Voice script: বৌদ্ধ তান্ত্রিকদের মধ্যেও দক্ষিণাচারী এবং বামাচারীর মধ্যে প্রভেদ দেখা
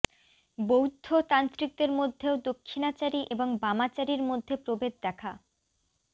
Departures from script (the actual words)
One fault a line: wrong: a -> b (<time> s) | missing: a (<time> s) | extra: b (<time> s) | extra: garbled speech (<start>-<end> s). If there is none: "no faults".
no faults